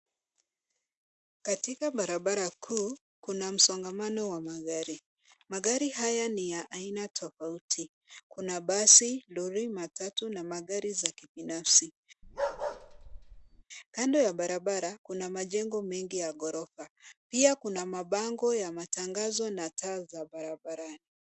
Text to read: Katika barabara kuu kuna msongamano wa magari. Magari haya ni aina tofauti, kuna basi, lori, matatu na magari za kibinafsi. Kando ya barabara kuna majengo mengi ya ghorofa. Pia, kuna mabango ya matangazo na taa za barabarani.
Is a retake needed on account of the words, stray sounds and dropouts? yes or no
yes